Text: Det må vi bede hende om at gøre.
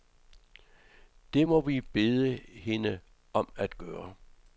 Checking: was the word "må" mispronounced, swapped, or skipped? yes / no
no